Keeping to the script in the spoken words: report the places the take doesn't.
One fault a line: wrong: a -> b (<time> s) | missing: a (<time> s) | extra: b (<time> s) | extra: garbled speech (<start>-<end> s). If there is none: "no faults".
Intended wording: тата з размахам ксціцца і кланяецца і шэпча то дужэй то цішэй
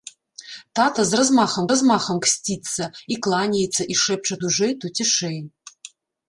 extra: размахам (1.7 s)
missing: то (4.3 s)